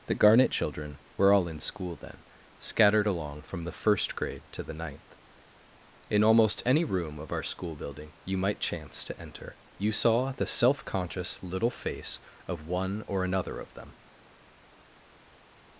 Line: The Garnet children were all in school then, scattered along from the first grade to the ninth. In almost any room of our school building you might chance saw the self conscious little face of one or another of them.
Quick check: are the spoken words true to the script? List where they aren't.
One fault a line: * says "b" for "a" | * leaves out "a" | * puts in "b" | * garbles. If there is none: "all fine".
* puts in "to enter you"